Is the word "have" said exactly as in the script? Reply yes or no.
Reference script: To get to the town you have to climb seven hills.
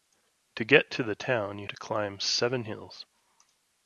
no